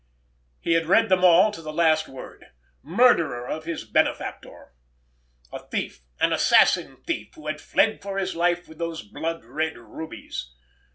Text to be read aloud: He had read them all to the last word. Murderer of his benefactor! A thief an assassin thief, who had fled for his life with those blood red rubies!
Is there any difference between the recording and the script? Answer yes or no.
no